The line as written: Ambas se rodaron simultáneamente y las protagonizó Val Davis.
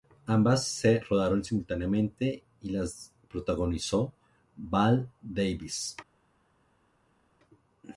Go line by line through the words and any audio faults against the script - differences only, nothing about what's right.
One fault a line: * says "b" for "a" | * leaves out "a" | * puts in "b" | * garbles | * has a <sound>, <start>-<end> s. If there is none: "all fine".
all fine